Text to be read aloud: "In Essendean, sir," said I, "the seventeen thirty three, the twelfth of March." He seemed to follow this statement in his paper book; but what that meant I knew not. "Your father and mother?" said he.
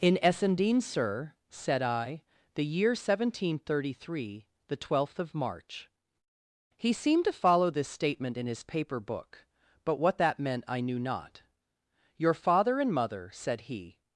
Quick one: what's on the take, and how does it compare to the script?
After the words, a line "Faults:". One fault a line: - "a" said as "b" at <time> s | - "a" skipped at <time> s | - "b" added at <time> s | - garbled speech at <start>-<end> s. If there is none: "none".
"In Essendean, sir," said I, "the year seventeen thirty three, the twelfth of March." He seemed to follow this statement in his paper book; but what that meant I knew not. "Your father and mother?" said he.
Faults:
- "year" added at 2.6 s